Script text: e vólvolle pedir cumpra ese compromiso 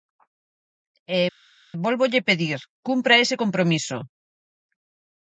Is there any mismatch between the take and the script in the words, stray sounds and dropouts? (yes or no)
no